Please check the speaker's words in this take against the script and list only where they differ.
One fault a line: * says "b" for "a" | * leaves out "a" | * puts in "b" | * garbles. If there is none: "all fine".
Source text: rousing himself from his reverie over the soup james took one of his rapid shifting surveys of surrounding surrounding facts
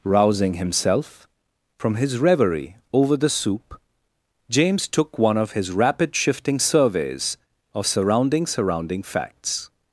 all fine